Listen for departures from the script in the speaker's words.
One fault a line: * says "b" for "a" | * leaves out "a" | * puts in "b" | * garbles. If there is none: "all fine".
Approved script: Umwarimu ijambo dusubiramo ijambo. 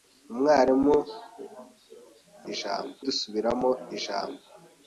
all fine